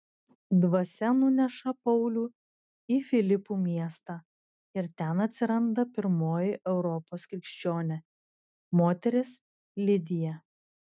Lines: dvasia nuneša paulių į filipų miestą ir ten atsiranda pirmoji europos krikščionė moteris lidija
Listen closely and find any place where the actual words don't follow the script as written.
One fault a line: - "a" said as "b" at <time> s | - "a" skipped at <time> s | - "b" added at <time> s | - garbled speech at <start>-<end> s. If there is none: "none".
none